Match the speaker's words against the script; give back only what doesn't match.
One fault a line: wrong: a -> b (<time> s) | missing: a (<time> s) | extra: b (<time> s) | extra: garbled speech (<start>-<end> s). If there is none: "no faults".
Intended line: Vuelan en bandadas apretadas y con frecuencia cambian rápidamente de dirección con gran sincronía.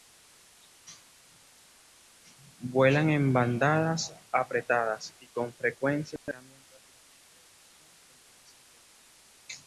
no faults